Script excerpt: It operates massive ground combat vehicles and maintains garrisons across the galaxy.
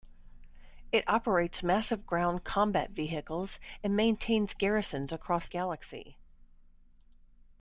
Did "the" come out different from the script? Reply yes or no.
yes